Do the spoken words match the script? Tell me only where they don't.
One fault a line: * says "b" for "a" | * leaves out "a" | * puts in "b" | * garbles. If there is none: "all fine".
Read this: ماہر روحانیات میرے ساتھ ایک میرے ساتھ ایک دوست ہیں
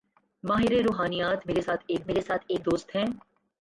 all fine